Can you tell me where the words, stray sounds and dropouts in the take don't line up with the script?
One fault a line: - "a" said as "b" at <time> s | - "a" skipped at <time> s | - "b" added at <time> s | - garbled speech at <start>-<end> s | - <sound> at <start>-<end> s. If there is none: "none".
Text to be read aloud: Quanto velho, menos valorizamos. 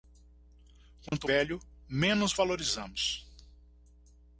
- dropout at 1.1-1.1 s